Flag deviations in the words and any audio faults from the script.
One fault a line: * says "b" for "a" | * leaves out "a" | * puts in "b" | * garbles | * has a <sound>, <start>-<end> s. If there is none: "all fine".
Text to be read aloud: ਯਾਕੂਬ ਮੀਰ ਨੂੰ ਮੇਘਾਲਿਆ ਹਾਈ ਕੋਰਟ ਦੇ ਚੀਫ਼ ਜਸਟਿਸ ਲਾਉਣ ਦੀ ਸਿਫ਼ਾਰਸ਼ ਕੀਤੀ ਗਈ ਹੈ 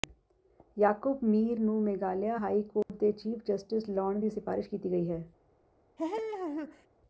* has a dropout, 2.8-2.9 s
* has a laugh, 6.0-6.9 s